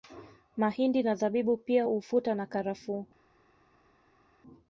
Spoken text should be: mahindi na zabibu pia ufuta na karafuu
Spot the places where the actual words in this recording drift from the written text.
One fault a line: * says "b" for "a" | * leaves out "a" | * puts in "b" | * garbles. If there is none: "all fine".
all fine